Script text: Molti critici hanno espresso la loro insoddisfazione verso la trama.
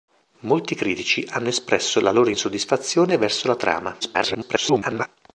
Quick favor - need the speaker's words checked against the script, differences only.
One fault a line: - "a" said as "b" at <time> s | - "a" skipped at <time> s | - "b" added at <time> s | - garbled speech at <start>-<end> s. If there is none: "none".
- garbled speech at 4.0-5.1 s